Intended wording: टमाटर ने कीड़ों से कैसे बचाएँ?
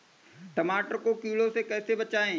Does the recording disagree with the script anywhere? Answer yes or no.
yes